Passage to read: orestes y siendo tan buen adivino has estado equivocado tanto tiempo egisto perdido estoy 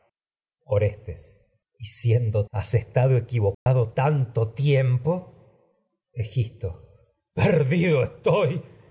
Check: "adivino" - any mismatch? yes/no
yes